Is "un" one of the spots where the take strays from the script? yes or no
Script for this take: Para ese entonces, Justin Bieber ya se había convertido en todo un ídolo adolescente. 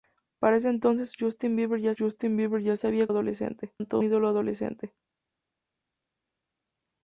yes